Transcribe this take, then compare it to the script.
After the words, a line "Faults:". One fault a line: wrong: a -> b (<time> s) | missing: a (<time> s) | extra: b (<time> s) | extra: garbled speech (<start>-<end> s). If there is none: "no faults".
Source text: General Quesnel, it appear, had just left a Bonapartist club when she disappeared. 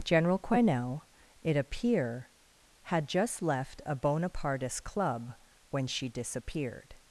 General Quesnel, it appear, had just left a Bonapartist club when she disappeared.
Faults:
no faults